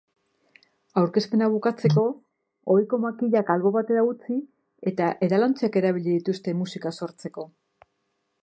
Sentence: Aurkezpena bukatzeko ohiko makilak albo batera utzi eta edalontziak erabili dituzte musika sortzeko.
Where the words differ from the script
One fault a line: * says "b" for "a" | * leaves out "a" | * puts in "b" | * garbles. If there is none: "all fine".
all fine